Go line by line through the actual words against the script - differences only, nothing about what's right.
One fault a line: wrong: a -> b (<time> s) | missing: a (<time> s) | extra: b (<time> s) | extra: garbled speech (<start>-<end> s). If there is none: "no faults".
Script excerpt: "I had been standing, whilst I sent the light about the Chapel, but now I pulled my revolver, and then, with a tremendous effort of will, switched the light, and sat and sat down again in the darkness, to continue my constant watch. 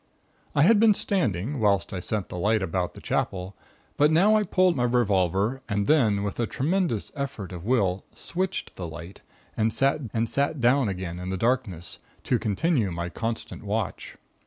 no faults